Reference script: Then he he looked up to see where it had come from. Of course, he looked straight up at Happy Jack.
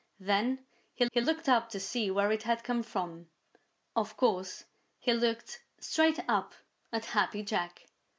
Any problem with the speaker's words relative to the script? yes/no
no